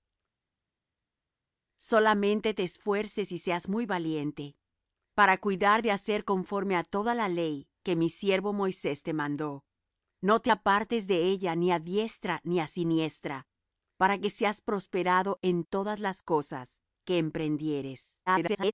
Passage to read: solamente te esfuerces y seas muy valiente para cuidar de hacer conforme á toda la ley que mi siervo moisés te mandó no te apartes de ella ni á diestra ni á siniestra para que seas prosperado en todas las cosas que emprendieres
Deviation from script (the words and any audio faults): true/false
true